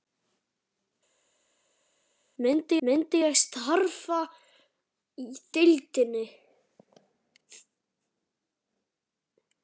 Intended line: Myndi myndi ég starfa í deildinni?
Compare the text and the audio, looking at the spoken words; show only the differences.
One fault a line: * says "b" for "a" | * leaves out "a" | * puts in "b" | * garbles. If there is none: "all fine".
all fine